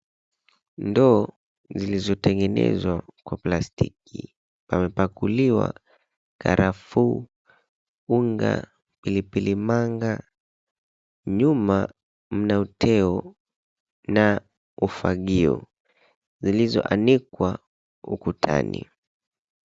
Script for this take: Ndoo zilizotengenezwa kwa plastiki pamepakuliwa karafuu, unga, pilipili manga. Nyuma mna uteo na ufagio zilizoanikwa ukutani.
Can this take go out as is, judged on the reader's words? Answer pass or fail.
pass